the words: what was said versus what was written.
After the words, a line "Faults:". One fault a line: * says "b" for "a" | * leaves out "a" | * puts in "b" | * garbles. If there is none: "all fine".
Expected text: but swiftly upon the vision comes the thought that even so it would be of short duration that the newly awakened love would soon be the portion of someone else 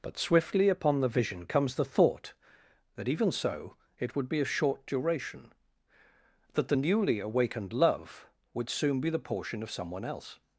but swiftly upon the vision comes the thought that even so it would be of short duration that the newly awakened love would soon be the portion of someone else
Faults:
all fine